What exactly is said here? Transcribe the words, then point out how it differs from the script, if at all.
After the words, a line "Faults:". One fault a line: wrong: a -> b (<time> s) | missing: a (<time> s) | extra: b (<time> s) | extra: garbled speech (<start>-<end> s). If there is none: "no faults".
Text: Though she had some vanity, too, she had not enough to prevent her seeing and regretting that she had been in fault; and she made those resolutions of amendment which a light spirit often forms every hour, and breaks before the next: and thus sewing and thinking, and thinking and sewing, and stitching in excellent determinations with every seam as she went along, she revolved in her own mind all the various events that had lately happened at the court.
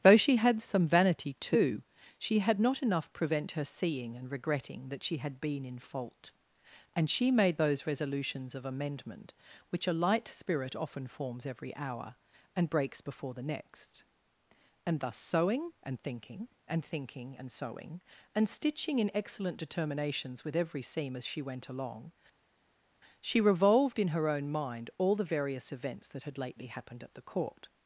Though she had some vanity, too, she had not enough prevent her seeing and regretting that she had been in fault; and she made those resolutions of amendment which a light spirit often forms every hour, and breaks before the next: and thus sewing and thinking, and thinking and sewing, and stitching in excellent determinations with every seam as she went along, she revolved in her own mind all the various events that had lately happened at the court.
Faults:
missing: to (3.1 s)